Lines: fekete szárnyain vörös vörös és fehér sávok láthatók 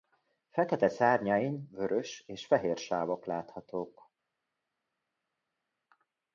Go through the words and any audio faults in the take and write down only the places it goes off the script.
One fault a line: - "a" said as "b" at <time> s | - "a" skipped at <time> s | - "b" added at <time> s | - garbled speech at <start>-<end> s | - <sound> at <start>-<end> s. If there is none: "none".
- "vörös" skipped at 2.2 s